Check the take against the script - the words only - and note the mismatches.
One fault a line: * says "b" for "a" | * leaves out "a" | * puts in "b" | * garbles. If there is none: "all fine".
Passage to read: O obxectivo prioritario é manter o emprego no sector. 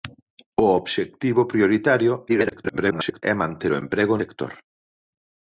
* garbles
* leaves out "no"